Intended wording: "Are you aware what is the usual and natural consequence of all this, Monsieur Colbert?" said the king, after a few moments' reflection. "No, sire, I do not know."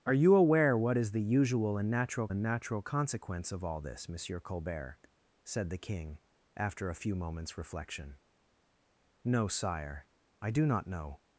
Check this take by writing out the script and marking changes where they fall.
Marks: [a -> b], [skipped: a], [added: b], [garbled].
"Are you aware what is the usual and natural [added: and natural] consequence of all this, Monsieur Colbert?" said the king, after a few moments' reflection. "No, sire, I do not know."